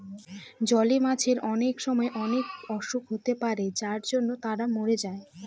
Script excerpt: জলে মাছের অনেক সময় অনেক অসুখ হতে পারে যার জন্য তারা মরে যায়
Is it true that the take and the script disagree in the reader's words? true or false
false